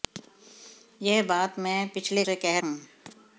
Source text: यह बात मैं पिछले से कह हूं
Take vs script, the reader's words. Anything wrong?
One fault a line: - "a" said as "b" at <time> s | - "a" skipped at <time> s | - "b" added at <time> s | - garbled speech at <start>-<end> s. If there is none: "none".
none